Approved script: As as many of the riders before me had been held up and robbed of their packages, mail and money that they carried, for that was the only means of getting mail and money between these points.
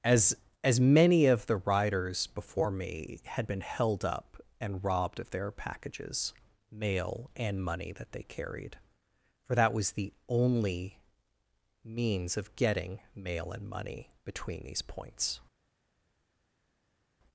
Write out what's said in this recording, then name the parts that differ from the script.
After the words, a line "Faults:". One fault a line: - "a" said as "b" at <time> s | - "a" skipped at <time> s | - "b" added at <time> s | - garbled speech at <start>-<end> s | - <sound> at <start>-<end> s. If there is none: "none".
As as many of the riders before me had been held up and robbed of their packages, mail and money that they carried, for that was the only means of getting mail and money between these points.
Faults:
none